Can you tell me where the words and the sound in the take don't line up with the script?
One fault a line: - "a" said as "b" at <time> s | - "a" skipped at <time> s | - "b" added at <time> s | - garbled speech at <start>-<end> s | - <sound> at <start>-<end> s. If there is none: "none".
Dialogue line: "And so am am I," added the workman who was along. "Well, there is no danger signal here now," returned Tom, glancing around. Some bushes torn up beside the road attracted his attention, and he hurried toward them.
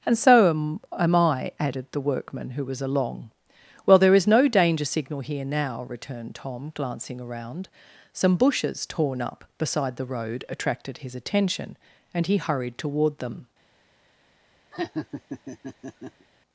- laugh at 14.7-16.3 s